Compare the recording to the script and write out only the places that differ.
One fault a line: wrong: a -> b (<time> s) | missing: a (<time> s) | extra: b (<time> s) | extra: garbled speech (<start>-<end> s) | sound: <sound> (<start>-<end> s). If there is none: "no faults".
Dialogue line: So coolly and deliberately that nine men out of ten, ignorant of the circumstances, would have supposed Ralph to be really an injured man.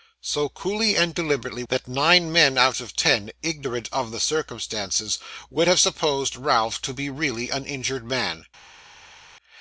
no faults